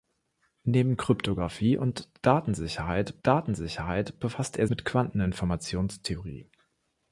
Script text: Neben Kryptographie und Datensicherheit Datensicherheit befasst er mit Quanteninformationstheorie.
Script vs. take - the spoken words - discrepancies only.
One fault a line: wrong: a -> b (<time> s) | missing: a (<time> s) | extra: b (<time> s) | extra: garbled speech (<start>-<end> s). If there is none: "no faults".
no faults